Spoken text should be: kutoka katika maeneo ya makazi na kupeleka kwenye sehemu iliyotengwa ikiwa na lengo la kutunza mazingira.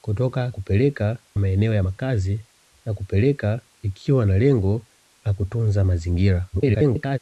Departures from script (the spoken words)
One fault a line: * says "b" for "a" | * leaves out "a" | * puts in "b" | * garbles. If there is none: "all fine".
* says "kupeleka" for "katika"
* leaves out "kwenye sehemu iliyotengwa"
* garbles